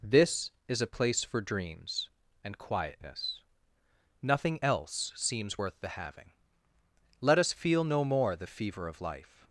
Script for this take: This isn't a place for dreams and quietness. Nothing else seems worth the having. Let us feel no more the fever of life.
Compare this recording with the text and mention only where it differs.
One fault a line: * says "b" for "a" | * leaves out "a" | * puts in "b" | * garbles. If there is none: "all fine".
* says "is" for "isn't"